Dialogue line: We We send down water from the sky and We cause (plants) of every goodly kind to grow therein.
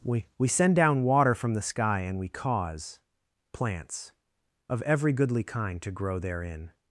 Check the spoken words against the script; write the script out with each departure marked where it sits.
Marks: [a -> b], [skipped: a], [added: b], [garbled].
We We send down water from the sky and We cause (plants) of every goodly kind to grow therein.